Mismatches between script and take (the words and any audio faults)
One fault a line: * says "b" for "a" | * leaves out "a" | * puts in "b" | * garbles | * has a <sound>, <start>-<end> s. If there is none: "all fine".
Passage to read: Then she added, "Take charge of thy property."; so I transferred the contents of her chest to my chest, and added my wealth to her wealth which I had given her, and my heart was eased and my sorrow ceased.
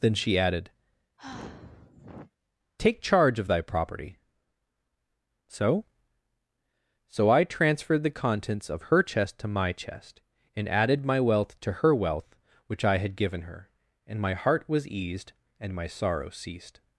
* has a sigh, 1.2-2.3 s
* puts in "so"